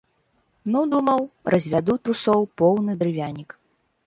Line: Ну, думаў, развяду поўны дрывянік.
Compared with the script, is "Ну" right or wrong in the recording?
right